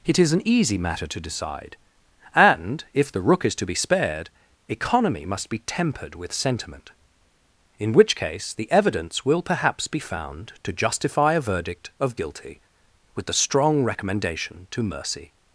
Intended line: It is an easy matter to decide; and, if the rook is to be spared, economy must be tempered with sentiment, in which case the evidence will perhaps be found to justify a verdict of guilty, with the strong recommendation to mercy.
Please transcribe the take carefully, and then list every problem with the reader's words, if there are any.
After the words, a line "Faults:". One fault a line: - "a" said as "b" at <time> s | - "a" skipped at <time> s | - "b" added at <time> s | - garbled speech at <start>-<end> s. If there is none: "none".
It is an easy matter to decide; and, if the rook is to be spared, economy must be tempered with sentiment, in which case the evidence will perhaps be found to justify a verdict of guilty, with the strong recommendation to mercy.
Faults:
none